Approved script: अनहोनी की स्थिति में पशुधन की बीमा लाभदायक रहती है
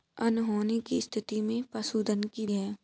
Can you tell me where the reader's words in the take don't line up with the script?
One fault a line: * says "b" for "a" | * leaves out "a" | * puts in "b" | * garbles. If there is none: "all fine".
* leaves out "बीमा लाभदायक रहती"